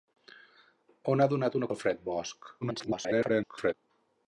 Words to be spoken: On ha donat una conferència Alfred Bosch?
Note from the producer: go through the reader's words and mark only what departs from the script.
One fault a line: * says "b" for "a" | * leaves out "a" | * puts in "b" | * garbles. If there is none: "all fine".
* leaves out "conferència"
* garbles